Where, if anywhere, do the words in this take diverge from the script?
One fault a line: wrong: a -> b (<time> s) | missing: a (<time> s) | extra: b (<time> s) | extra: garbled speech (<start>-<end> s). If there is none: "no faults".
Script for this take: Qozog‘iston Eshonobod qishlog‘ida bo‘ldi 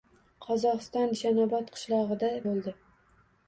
no faults